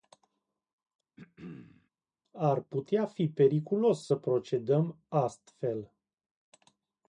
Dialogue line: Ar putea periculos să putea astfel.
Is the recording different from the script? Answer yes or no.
yes